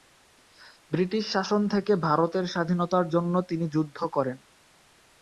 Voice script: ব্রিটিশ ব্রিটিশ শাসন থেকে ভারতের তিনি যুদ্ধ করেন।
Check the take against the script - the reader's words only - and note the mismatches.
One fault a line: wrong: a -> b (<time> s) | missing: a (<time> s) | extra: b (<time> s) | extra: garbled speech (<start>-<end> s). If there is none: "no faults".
missing: ব্রিটিশ (1.2 s)
extra: স্বাধীনতার জন্য (2.5 s)